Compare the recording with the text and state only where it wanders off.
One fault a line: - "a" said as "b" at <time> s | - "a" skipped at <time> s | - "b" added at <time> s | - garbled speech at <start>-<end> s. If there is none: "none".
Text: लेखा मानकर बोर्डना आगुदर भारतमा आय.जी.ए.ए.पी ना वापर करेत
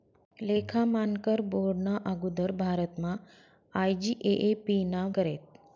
- "वापर" skipped at 5.0 s